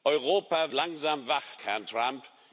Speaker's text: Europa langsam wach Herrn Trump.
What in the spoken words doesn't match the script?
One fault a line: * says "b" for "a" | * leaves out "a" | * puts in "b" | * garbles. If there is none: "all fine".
all fine